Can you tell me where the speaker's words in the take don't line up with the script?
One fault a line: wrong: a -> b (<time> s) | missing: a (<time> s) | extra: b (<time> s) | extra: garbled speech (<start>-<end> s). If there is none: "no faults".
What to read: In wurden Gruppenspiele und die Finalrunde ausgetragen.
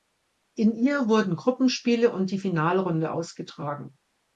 extra: ihr (0.7 s)